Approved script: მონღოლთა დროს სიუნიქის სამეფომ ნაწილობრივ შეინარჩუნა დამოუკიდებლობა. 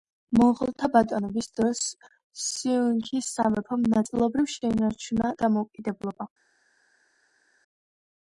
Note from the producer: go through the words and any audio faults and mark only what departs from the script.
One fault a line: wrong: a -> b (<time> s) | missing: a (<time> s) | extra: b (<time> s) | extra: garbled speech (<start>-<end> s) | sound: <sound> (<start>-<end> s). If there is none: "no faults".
extra: ბატონობის (0.9 s)